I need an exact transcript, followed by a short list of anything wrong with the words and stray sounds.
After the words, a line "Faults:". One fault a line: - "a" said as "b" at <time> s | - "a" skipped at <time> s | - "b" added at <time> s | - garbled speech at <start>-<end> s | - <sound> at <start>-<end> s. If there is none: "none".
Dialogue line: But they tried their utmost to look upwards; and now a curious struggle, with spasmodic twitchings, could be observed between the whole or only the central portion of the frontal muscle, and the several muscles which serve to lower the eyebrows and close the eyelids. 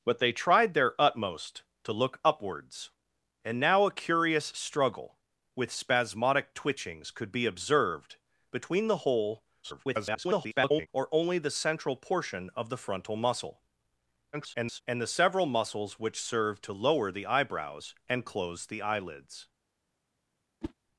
But they tried their utmost to look upwards; and now a curious struggle, with spasmodic twitchings, could be observed between the whole [garbled] or only the central portion of the frontal muscle, [garbled] and the several muscles which serve to lower the eyebrows and close the eyelids.
Faults:
- garbled speech at 9.6-10.9 s
- garbled speech at 14.3-14.8 s
- whoosh at 20.6-20.7 s